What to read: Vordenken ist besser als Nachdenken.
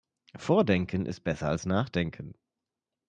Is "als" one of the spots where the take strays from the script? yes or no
no